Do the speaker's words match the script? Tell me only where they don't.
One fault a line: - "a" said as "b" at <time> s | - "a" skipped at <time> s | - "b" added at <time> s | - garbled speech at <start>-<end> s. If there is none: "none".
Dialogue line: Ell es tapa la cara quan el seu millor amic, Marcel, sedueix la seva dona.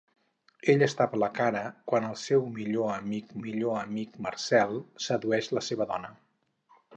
- "millor amic" added at 3.4 s